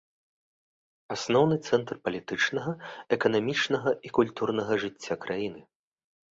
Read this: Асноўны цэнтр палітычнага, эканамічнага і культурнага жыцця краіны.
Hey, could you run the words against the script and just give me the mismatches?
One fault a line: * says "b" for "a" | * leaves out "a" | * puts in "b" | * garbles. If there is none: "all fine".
all fine